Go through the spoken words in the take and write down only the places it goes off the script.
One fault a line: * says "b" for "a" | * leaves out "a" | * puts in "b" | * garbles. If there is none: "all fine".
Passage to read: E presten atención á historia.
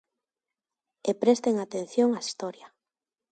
all fine